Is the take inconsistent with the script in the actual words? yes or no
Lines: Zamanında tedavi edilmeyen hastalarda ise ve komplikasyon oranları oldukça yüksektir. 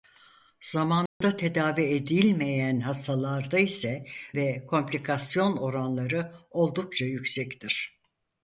no